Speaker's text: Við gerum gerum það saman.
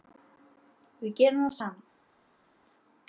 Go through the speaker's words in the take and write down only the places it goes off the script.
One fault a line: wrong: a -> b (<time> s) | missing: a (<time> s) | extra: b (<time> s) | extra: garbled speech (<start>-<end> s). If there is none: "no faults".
missing: gerum (1.4 s)